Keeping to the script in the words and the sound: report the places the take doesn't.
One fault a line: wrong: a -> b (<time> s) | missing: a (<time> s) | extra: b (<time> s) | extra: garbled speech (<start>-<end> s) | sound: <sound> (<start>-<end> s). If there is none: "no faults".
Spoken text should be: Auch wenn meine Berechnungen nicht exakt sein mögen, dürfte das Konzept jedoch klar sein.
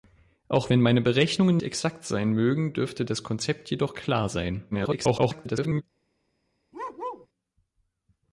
missing: nicht (1.6 s)
extra: garbled speech (4.7-5.8 s)
sound: bark (6.7-7.3 s)